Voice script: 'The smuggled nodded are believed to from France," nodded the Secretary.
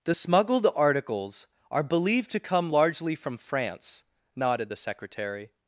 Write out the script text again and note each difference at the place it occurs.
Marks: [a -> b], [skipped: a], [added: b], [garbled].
'The smuggled [nodded -> articles] are believed to [added: come largely] from France," nodded the Secretary.